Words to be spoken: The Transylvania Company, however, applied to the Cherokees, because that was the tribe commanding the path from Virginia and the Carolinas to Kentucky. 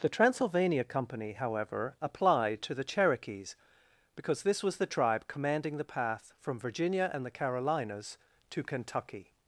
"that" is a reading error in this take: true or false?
true